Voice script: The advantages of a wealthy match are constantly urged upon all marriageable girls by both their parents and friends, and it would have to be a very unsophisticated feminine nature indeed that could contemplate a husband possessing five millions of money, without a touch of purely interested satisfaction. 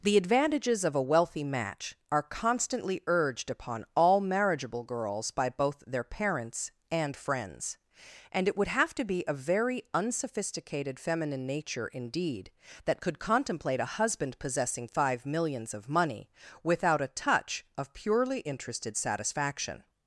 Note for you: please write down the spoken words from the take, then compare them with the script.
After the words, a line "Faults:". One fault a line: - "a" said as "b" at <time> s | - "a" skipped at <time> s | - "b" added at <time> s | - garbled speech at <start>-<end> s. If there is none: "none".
The advantages of a wealthy match are constantly urged upon all marriageable girls by both their parents and friends, and it would have to be a very unsophisticated feminine nature indeed that could contemplate a husband possessing five millions of money, without a touch of purely interested satisfaction.
Faults:
none